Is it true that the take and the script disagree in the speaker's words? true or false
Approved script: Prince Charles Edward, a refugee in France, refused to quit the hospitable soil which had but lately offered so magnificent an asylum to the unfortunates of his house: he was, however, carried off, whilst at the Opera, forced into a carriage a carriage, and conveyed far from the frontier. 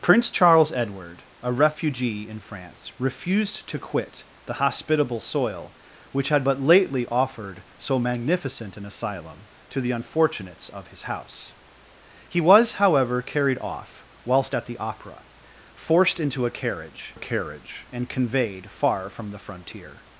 false